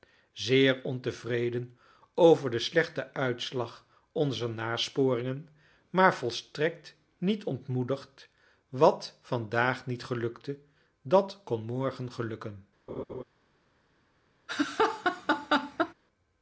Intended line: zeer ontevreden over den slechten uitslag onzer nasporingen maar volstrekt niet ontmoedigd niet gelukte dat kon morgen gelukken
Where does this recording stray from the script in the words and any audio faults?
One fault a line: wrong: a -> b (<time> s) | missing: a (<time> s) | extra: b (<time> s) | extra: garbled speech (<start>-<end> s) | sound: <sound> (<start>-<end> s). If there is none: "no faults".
extra: wat vandaag (8.7 s)
sound: laugh (12.9-13.2 s)
sound: laugh (14.5-15.9 s)